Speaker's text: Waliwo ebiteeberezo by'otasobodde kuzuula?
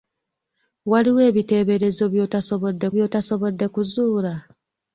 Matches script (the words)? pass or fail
fail